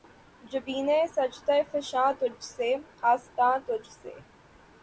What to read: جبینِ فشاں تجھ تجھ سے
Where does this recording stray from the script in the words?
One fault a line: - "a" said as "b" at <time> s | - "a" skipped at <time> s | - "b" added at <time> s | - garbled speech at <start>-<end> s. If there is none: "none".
- "سجدہ" added at 1.2 s
- "سے آستاں" added at 2.5 s